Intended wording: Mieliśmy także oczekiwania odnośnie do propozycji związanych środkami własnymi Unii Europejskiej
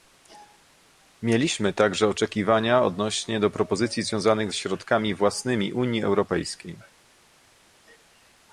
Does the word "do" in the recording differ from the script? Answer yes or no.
no